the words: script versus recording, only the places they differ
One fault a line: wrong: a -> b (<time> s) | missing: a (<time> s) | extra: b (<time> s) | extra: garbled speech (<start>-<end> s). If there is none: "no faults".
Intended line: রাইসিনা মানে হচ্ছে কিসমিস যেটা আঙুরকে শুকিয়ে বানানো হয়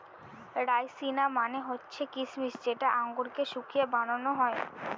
no faults